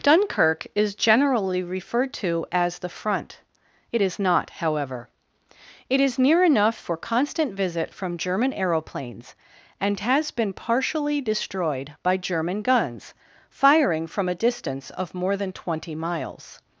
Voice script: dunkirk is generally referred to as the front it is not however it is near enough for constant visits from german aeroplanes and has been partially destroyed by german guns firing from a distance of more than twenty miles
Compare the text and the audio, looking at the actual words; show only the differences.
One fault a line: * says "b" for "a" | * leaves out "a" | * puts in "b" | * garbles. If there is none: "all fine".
* says "visit" for "visits"